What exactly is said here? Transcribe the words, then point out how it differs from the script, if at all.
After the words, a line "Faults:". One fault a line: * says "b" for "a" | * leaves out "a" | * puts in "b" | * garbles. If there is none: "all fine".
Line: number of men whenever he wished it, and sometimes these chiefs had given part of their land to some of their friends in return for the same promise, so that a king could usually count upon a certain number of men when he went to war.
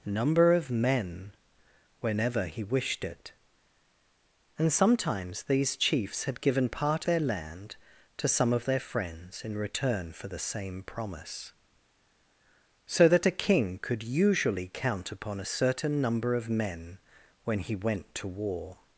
number of men whenever he wished it, and sometimes these chiefs had given part their land to some of their friends in return for the same promise, so that a king could usually count upon a certain number of men when he went to war.
Faults:
* leaves out "of"